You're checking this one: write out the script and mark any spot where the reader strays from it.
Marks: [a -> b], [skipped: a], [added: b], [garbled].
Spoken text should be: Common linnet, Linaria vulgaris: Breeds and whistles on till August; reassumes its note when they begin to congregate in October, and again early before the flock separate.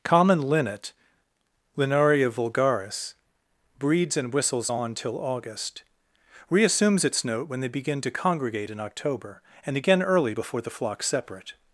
Common linnet, Linaria vulgaris: Breeds and whistles on till August; reassumes its note when they begin to congregate in October, and again early before the flock separate.